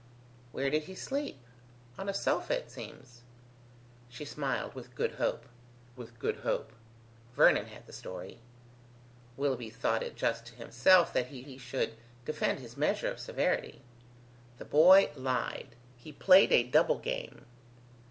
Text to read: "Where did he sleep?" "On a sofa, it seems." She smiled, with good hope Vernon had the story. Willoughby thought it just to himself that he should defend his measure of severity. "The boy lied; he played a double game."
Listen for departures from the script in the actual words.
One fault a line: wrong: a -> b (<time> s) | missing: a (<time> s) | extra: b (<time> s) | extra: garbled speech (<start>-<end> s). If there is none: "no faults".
extra: with good hope (6.0 s)
extra: he (11.4 s)